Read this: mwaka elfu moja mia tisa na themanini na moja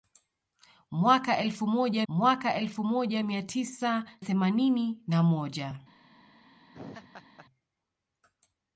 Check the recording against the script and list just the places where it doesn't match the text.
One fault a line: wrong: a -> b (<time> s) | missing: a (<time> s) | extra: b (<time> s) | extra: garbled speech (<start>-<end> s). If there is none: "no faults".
extra: mwaka elfu moja (2.1 s)
missing: na (4.0 s)